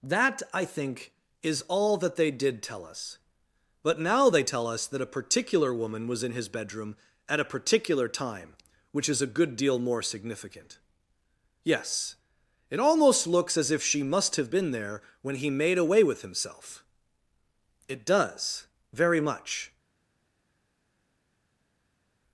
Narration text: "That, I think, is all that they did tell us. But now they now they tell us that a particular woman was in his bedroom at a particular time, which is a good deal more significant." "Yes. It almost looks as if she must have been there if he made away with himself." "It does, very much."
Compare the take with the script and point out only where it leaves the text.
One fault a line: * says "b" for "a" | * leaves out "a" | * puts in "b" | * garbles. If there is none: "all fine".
* leaves out "now they"
* says "when" for "if"